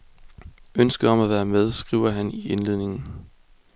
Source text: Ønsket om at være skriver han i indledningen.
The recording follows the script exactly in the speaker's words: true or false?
false